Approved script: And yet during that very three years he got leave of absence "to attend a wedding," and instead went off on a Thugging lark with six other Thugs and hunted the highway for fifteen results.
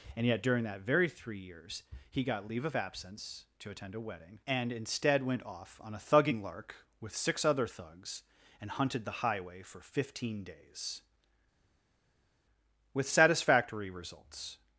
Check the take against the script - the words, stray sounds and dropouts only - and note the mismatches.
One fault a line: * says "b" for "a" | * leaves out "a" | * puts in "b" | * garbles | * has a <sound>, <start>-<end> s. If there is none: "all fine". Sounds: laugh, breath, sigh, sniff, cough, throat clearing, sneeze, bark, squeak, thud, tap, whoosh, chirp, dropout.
* puts in "days with satisfactory"